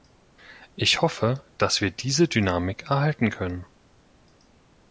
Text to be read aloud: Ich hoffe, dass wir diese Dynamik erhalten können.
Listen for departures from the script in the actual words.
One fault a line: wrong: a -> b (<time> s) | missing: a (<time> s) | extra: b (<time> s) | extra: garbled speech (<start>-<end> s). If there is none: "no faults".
no faults